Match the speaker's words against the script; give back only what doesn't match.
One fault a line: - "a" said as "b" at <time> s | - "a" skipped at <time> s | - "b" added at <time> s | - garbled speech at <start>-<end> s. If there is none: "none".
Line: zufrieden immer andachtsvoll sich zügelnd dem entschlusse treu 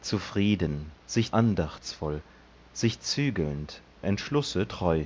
- "immer" said as "sich" at 1.1 s
- "dem" skipped at 3.8 s